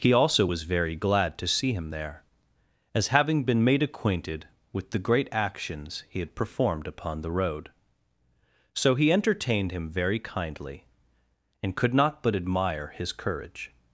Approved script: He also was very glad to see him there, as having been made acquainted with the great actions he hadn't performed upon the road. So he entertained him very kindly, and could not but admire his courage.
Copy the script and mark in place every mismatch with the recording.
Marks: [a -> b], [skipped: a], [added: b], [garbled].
He also was very glad to see him there, as having been made acquainted with the great actions he [hadn't -> had] performed upon the road. So he entertained him very kindly, and could not but admire his courage.